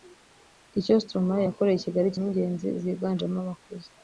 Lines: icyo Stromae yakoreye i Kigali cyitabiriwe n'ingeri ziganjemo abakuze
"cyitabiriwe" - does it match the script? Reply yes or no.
no